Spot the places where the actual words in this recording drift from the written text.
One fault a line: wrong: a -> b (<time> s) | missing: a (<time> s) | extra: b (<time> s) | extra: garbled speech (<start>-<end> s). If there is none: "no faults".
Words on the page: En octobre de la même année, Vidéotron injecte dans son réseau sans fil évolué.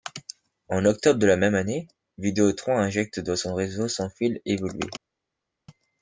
no faults